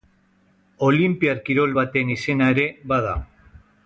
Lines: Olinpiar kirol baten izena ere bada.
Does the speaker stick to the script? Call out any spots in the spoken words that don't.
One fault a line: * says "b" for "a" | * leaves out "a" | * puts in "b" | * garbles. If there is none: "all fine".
all fine